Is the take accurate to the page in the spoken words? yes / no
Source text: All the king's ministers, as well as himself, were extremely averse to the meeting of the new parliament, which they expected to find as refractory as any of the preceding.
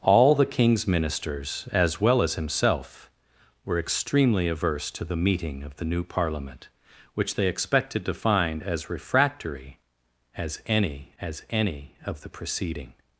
no